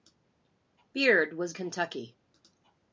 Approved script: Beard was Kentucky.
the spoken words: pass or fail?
pass